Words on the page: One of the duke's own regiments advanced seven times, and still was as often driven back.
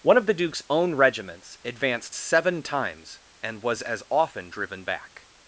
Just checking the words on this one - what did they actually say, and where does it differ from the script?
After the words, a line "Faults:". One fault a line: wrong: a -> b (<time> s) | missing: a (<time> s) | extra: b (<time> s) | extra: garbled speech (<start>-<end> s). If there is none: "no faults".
One of the duke's own regiments advanced seven times, and was as often driven back.
Faults:
missing: still (3.6 s)